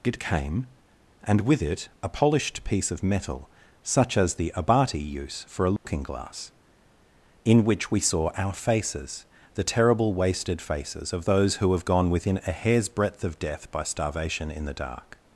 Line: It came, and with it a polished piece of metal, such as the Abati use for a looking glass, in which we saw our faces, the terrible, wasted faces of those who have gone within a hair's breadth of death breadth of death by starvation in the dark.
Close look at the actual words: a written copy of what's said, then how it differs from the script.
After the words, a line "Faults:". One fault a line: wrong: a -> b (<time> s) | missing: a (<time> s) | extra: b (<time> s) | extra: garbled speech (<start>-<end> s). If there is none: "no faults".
It came, and with it a polished piece of metal, such as the Abati use for a looking glass, in which we saw our faces, the terrible, wasted faces of those who have gone within a hair's breadth of death by starvation in the dark.
Faults:
missing: breadth of death (13.7 s)